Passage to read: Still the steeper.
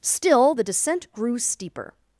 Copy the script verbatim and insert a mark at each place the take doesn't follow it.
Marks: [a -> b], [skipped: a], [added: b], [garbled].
Still the [added: descent grew] steeper.